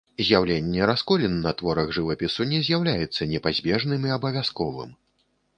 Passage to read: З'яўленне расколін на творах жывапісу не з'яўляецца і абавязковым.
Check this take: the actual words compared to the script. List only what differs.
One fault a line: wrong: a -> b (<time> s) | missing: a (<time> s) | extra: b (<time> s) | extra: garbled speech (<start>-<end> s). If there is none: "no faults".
extra: непазбежным (3.3 s)